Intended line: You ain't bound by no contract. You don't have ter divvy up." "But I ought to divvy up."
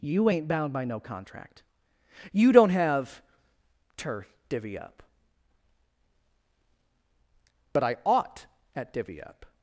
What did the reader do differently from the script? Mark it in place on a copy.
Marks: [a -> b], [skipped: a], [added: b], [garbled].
You ain't bound by no contract. You don't have ter divvy up." "But I ought [to -> at] divvy up."